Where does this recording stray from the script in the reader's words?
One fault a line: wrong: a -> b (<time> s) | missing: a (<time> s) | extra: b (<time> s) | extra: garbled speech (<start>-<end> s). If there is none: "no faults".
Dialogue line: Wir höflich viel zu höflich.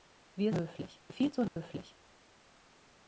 no faults